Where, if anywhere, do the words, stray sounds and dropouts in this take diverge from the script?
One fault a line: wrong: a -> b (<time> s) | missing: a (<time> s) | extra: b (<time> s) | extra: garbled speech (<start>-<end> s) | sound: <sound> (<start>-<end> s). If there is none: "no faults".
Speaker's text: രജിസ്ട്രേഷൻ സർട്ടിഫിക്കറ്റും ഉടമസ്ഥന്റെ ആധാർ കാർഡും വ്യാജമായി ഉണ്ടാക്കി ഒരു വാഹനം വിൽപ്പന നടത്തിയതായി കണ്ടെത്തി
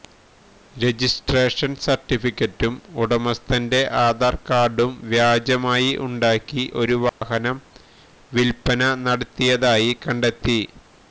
sound: dropout (7.1-7.2 s)